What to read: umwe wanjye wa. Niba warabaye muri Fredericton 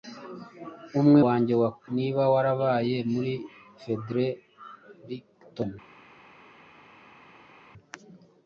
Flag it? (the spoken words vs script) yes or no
no